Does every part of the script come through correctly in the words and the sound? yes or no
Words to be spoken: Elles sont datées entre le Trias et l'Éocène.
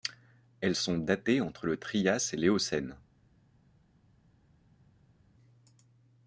yes